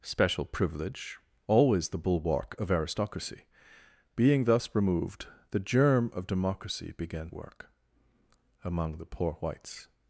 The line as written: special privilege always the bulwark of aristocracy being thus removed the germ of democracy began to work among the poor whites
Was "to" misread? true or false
true